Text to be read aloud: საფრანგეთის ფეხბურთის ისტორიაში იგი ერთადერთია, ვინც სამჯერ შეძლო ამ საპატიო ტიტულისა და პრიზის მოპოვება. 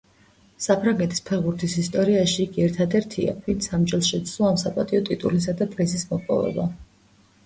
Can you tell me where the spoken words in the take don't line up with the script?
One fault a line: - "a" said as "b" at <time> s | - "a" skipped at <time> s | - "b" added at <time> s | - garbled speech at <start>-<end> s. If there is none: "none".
none